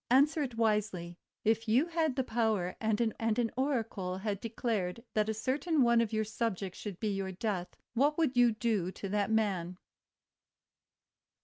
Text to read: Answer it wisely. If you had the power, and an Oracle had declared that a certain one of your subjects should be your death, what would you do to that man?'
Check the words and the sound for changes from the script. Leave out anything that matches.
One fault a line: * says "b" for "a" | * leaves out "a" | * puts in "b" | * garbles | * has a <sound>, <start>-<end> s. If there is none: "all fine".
* puts in "and an"